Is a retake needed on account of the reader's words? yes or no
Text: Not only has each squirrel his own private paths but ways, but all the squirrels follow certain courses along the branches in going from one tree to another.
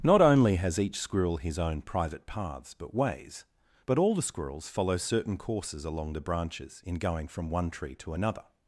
no